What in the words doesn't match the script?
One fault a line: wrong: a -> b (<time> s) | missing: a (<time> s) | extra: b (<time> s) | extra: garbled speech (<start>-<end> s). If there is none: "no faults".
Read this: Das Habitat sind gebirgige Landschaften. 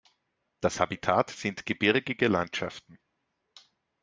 no faults